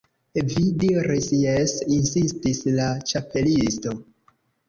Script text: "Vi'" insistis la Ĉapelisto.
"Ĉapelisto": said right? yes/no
yes